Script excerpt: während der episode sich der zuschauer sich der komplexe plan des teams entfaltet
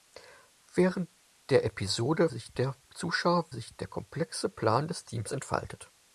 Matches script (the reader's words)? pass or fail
pass